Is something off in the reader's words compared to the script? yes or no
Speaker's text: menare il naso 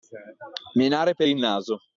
yes